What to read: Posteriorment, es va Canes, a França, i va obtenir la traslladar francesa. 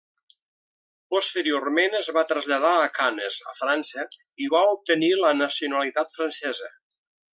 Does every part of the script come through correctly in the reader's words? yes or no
no